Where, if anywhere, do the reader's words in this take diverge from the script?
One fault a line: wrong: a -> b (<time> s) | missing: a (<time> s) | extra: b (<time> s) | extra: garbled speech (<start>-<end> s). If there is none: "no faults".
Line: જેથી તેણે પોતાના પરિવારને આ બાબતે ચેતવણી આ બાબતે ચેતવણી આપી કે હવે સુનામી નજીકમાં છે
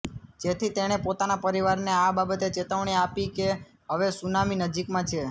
missing: આ બાબતે ચેતવણી (3.0 s)